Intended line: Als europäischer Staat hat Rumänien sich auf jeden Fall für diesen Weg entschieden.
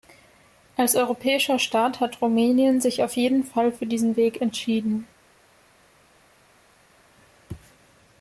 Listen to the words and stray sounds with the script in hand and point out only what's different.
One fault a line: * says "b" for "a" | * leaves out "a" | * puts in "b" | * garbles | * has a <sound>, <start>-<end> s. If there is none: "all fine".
all fine